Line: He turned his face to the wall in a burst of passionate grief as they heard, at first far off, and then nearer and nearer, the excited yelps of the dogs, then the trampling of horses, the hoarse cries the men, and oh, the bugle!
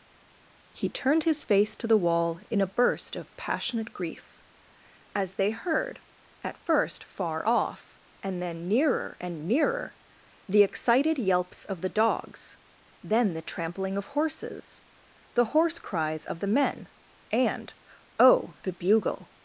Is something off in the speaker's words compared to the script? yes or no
yes